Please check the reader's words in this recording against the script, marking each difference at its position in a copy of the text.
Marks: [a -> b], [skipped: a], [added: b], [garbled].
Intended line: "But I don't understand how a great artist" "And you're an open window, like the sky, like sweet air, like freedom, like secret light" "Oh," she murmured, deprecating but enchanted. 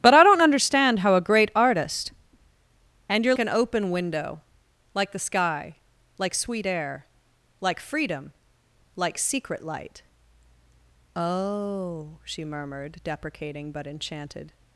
"But I don't understand how a great artist" "And you're an open window, like the sky, like sweet air, like freedom, like secret light" "Oh," she murmured, deprecating but enchanted.